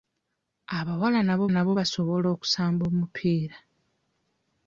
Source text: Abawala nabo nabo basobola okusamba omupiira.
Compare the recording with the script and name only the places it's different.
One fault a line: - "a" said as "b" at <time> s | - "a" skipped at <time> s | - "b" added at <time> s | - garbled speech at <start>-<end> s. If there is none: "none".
none